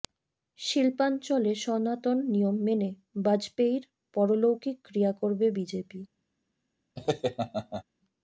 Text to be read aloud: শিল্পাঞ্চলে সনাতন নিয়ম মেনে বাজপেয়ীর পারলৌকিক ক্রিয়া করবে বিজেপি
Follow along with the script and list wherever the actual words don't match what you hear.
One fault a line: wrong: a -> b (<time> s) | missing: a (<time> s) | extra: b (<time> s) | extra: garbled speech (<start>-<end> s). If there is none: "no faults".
no faults